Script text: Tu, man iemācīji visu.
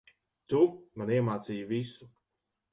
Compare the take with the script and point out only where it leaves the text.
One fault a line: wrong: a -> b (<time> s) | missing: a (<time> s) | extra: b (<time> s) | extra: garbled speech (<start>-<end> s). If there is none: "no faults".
no faults